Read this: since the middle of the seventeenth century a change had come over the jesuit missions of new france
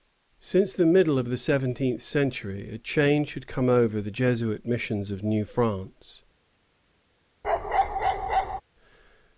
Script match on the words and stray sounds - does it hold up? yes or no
no